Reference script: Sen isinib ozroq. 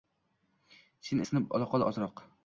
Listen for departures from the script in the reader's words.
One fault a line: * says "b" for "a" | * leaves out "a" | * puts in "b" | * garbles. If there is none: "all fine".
* puts in "olaqol"